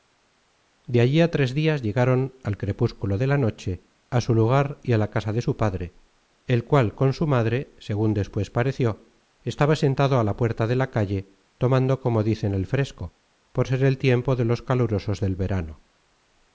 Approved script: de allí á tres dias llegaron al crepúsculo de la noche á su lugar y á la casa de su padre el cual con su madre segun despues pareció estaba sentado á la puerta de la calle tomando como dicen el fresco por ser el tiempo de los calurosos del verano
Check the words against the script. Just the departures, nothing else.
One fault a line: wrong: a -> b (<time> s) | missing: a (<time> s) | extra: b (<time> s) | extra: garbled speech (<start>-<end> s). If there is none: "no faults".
no faults